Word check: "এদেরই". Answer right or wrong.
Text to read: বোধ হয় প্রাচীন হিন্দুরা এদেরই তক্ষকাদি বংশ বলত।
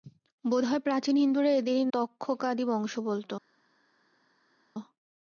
right